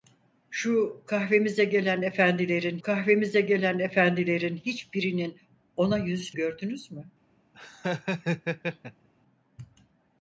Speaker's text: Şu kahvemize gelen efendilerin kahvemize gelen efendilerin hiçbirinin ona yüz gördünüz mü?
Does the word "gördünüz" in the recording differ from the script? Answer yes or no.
no